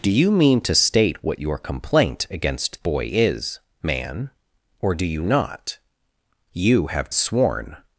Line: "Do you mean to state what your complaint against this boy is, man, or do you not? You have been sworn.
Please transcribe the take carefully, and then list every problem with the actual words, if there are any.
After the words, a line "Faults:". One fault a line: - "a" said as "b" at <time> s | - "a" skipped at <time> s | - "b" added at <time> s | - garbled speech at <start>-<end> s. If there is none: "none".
"Do you mean to state what your complaint against boy is, man, or do you not? You have sworn.
Faults:
- "this" skipped at 2.8 s
- "been" skipped at 7.1 s